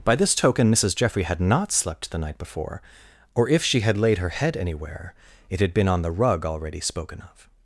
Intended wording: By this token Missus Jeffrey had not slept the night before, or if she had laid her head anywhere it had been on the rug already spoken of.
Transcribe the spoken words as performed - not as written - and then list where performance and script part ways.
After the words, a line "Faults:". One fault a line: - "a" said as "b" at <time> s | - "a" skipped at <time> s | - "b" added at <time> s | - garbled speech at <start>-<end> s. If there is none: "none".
By this token Missus Jeffrey had not slept the night before, or if she had laid her head anywhere it had been on the rug already spoken of.
Faults:
none